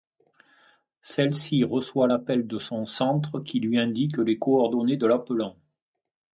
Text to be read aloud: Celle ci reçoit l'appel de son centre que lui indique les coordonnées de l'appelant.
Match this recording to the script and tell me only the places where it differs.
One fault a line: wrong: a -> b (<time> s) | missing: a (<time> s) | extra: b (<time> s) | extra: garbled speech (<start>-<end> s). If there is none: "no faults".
wrong: que -> qui (3.4 s)